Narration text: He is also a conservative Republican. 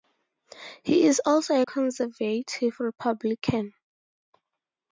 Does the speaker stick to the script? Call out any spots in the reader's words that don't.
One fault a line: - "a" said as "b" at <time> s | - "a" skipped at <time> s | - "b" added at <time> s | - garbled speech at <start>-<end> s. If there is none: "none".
none